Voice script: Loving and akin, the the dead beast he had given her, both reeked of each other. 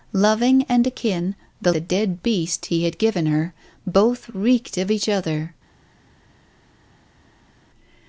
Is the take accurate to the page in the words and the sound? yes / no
yes